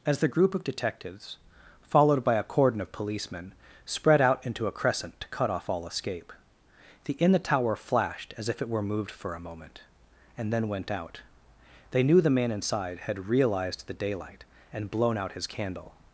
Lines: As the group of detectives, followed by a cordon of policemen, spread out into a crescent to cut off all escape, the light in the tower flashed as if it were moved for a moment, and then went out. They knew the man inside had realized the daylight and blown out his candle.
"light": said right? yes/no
no